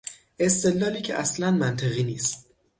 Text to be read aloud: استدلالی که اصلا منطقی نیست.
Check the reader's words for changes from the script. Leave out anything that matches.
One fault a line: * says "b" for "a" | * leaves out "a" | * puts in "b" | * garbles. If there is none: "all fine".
all fine